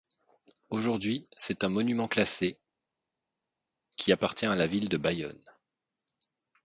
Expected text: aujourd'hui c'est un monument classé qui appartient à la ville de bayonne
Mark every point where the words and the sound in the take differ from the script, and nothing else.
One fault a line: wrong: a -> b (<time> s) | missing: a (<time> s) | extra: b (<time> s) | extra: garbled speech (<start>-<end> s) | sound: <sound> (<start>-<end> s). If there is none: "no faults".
no faults